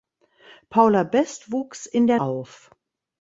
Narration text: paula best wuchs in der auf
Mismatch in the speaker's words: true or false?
false